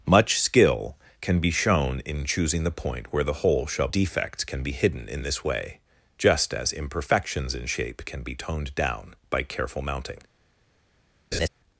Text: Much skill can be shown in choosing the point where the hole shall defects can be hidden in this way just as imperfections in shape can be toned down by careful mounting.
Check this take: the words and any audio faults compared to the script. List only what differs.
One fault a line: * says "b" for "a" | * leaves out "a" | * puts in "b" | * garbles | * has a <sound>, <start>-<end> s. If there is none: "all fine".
* has a laugh, 11.3-11.5 s